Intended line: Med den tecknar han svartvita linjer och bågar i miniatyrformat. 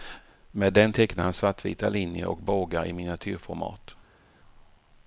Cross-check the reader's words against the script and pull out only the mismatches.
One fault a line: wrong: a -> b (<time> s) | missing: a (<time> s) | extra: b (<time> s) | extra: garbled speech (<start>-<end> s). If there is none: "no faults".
no faults